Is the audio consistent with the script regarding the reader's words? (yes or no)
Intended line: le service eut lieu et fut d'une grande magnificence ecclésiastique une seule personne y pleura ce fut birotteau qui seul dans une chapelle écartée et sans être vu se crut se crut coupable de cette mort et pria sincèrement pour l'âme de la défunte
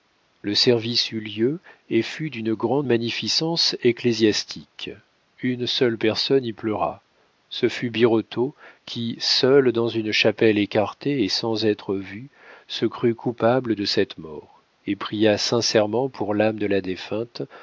no